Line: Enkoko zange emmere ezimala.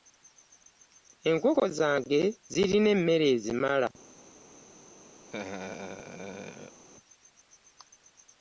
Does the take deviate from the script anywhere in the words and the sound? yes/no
yes